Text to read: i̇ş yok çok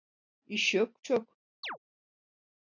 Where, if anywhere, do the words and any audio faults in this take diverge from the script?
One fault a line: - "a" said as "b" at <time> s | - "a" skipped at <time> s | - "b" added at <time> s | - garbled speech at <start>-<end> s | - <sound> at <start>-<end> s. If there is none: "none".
- chirp at 1.6-1.8 s